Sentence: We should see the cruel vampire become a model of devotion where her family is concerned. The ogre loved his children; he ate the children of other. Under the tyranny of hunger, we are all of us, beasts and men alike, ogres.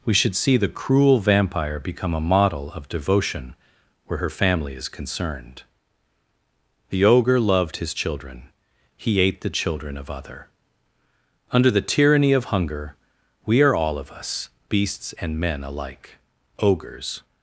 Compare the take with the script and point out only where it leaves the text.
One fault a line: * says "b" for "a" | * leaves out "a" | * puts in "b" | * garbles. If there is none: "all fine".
all fine